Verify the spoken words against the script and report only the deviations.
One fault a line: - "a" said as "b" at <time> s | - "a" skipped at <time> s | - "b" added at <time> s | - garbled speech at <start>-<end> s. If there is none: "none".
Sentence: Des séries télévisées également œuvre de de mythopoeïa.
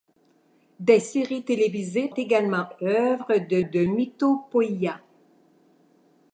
none